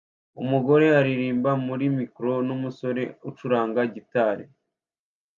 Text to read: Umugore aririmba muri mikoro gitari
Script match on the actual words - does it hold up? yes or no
no